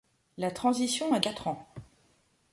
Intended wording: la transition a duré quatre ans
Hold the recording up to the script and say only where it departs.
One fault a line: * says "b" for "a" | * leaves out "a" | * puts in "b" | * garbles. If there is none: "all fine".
* leaves out "duré"